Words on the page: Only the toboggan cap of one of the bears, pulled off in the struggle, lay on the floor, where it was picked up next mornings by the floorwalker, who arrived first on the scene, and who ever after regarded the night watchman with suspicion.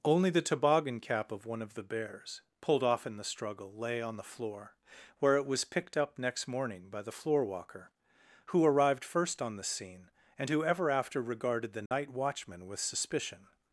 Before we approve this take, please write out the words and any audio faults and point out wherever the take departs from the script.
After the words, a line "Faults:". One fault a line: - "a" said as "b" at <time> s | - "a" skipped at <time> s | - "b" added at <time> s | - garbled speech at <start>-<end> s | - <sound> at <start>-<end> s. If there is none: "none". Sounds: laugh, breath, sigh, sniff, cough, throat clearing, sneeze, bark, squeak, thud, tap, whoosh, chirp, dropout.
Only the toboggan cap of one of the bears, pulled off in the struggle, lay on the floor, where it was picked up next morning by the floorwalker, who arrived first on the scene, and who ever after regarded the night watchman with suspicion.
Faults:
- "mornings" said as "morning" at 6.5 s
- dropout at 11.9-11.9 s